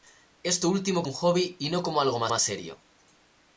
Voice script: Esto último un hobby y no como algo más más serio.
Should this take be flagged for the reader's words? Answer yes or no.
no